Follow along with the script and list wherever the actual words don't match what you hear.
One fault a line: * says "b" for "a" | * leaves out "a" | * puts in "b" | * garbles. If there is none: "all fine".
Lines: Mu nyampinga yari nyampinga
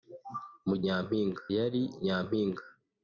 all fine